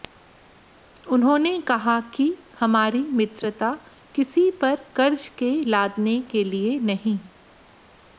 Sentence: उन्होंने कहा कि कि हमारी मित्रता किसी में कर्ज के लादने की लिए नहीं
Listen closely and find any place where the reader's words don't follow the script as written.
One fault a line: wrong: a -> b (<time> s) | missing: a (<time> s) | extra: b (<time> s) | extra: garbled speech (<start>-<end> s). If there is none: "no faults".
missing: कि (2.2 s)
wrong: में -> पर (4.6 s)
wrong: की -> के (6.3 s)